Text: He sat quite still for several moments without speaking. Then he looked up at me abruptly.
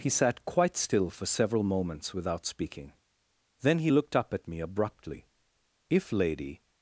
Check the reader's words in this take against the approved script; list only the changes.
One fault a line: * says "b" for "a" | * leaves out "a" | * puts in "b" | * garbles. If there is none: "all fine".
* puts in "If Lady"